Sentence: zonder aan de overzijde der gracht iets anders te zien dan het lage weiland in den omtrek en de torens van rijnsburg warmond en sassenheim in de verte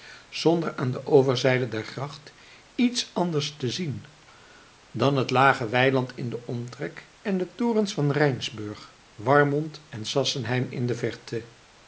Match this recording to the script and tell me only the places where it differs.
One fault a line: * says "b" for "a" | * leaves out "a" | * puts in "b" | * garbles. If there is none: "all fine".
all fine